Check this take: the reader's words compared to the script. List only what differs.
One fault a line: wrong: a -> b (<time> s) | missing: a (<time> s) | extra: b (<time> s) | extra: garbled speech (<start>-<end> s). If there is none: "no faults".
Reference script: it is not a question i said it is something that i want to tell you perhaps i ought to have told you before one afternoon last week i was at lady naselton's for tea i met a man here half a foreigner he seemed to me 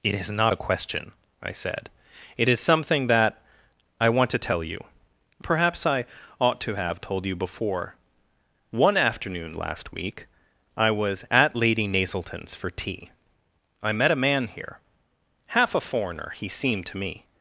no faults